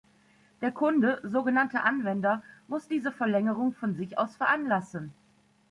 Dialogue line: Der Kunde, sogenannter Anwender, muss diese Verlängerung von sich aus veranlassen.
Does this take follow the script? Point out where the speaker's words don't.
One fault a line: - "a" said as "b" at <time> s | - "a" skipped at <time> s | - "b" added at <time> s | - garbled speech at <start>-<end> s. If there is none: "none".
none